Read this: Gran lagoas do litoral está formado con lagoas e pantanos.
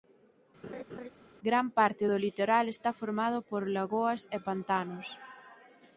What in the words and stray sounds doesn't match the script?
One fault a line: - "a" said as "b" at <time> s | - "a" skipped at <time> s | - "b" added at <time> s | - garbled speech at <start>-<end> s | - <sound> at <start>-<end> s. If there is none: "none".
- laugh at 0.6-1.1 s
- "lagoas" said as "parte" at 1.8 s
- "con" said as "por" at 3.5 s